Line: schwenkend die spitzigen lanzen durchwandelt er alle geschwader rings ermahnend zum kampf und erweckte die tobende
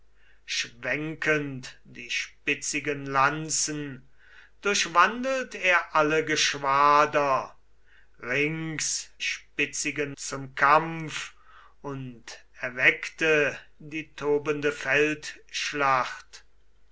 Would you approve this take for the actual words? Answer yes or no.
no